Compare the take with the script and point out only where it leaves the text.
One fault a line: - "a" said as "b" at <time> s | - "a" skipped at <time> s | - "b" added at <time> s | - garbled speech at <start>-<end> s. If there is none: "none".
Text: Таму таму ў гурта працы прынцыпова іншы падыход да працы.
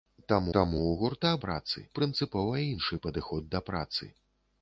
none